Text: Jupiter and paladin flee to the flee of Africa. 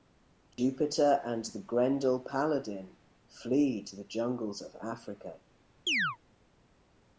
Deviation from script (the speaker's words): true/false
true